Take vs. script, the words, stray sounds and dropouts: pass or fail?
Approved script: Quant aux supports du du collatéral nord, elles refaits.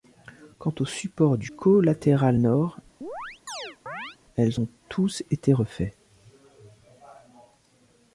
fail